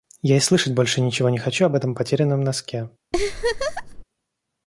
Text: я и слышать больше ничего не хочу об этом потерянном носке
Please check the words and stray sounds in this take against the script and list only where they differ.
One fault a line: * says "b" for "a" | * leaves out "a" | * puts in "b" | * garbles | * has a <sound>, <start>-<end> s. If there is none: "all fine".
* has a laugh, 3.1-4.0 s